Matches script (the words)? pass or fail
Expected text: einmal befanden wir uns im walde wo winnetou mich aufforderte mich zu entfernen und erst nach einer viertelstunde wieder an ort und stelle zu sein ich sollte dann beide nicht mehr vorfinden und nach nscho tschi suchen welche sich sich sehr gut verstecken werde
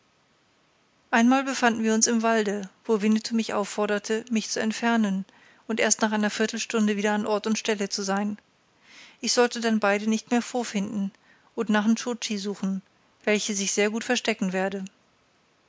fail